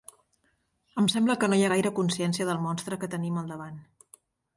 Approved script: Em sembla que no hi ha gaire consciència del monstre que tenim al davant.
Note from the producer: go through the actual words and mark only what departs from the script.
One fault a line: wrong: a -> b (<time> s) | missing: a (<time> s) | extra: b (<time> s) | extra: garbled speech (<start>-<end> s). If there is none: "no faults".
no faults